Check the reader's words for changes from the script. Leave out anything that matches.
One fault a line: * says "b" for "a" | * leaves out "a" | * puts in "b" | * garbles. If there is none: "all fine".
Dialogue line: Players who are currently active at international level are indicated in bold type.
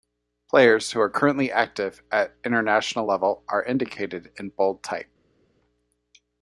all fine